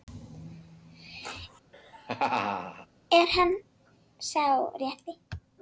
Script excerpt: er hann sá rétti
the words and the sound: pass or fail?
fail